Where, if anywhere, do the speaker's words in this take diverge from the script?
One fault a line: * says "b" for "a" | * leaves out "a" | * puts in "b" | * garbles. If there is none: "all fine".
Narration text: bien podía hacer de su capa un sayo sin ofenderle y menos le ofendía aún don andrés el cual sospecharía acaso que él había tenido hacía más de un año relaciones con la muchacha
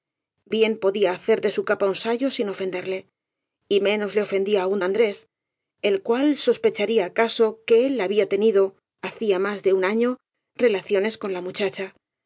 * leaves out "don"